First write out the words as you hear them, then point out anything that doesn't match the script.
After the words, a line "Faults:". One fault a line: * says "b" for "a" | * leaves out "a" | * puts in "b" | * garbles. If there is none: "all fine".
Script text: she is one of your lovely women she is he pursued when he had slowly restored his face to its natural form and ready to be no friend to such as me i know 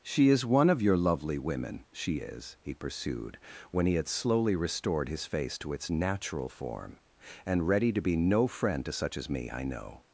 she is one of your lovely women she is he pursued when he had slowly restored his face to its natural form and ready to be no friend to such as me i know
Faults:
all fine